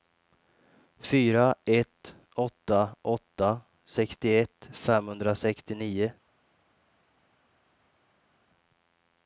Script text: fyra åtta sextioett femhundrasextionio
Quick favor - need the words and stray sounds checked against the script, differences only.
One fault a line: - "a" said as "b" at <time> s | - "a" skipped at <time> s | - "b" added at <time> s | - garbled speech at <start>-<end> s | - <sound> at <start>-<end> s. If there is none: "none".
- "ett åtta" added at 1.6 s